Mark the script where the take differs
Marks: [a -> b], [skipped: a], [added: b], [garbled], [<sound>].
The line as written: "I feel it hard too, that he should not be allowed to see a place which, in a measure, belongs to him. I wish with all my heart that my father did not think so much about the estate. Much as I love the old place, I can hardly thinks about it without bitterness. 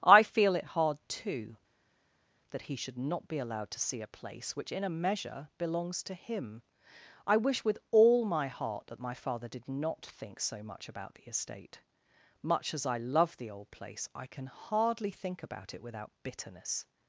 "I feel it hard too, that he should not be allowed to see a place which, in a measure, belongs to him. I wish with all my heart that my father did not think so much about the estate. Much as I love the old place, I can hardly [thinks -> think] about it without bitterness.